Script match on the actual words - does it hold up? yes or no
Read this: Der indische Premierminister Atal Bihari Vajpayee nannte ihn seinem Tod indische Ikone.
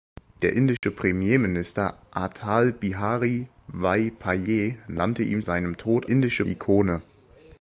yes